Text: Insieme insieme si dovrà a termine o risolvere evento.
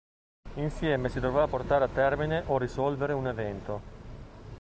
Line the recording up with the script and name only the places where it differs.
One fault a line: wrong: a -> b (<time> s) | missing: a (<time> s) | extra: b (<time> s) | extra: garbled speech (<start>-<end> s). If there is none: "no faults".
missing: insieme (1.1 s)
extra: portare (1.4 s)
extra: un (3.1 s)